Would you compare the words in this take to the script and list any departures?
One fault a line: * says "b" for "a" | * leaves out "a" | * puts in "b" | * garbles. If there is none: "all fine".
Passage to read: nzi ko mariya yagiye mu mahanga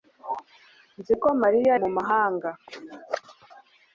* leaves out "yagiye"